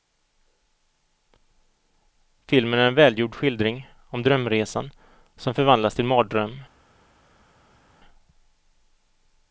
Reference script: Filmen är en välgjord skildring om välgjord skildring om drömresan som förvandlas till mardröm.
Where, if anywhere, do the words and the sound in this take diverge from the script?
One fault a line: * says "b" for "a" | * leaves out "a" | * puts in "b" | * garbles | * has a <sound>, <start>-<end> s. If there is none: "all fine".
* leaves out "välgjord skildring om"